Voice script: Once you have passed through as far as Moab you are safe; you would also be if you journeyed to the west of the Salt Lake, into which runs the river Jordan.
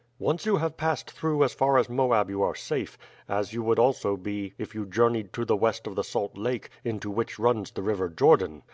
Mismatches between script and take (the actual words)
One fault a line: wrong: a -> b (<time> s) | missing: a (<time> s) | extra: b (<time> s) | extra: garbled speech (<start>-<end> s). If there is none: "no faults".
extra: as (3.3 s)